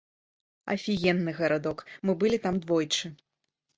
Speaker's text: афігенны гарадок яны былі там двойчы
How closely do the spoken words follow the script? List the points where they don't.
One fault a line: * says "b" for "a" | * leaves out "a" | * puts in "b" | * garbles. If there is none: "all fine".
* says "мы" for "яны"